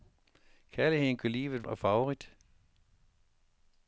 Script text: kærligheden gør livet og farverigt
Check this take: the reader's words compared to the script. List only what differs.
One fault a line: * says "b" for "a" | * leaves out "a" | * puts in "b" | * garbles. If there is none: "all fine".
all fine